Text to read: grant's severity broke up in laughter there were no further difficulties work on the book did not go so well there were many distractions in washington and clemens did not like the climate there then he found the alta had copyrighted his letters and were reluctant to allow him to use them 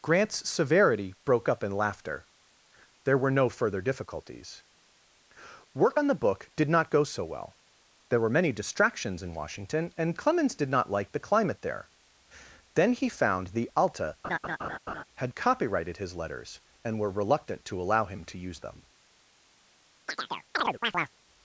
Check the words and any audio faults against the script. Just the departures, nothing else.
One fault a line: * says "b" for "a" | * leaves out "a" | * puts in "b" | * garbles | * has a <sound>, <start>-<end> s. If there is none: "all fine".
* has a laugh, 14.2-15.0 s
* has a chirp, 20.1-21.1 s